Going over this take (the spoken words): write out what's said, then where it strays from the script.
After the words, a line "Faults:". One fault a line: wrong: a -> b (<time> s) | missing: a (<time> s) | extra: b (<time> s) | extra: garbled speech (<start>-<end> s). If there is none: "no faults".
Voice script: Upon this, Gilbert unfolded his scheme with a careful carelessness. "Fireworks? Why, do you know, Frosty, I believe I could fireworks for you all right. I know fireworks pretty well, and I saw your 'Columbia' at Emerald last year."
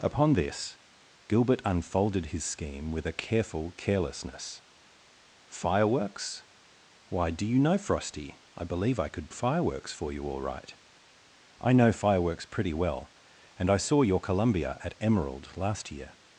Upon this, Gilbert unfolded his scheme with a careful carelessness. "Fireworks? Why, do you know, Frosty, I believe I could fireworks for you all right. I know fireworks pretty well, and I saw your 'Columbia' at Emerald last year."
Faults:
no faults